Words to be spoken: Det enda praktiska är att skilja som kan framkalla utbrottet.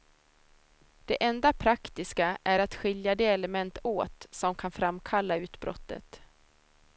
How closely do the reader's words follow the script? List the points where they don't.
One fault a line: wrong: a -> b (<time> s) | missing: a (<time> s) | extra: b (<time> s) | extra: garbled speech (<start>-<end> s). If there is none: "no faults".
extra: de element åt (3.2 s)